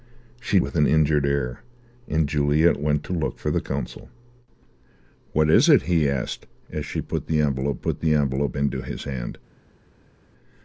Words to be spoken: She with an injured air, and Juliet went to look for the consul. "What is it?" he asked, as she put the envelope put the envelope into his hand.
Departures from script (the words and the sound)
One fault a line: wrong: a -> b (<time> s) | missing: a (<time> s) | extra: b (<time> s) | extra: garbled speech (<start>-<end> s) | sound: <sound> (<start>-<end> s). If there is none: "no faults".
no faults